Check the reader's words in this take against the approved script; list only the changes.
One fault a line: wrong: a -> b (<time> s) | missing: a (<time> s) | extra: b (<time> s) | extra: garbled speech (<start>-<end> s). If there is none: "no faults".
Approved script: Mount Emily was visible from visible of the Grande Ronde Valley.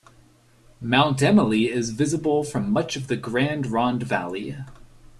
wrong: was -> is (1.7 s)
wrong: visible -> much (2.7 s)